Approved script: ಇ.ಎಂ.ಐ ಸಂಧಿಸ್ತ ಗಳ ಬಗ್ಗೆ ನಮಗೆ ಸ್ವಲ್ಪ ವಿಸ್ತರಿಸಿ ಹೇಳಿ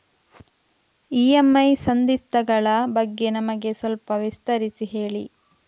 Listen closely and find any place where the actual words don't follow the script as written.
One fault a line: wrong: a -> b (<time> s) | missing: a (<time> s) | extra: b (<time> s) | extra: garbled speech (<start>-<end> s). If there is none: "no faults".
no faults